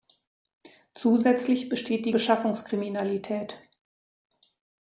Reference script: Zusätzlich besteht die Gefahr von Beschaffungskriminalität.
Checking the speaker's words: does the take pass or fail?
fail